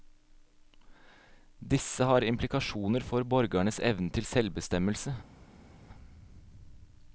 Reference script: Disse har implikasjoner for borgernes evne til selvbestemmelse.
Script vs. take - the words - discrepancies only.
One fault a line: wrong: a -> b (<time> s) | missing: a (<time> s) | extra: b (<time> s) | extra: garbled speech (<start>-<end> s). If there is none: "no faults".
no faults